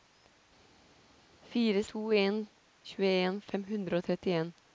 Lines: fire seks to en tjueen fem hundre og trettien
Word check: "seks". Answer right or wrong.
wrong